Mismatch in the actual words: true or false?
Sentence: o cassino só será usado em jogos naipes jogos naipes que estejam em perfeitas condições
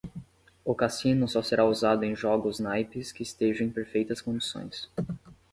true